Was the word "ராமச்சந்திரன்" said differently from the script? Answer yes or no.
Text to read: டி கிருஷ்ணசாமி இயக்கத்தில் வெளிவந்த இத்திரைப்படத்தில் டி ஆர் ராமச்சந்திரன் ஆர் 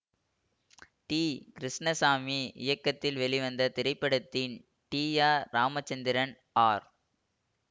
no